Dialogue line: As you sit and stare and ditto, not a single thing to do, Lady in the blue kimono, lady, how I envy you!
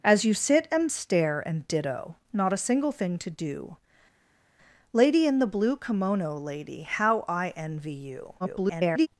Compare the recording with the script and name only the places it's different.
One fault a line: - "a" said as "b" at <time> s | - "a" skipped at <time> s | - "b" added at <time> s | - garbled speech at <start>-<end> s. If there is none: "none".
- garbled speech at 8.4-9.1 s